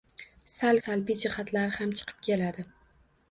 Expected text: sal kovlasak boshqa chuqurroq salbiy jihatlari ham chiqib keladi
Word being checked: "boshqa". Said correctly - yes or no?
no